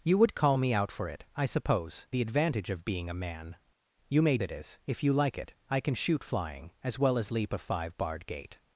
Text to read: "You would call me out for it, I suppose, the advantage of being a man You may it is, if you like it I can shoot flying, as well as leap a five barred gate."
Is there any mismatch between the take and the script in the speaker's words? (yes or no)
no